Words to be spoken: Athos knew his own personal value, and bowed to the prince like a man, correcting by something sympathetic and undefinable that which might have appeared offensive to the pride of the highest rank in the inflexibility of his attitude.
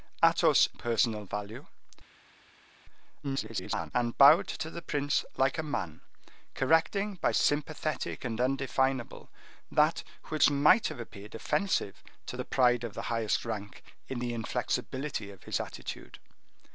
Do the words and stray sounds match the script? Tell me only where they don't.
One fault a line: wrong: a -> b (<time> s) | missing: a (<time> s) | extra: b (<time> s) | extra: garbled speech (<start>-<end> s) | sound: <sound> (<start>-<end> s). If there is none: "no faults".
missing: knew his own (0.7 s)
extra: garbled speech (3.2-3.9 s)
missing: something (7.3 s)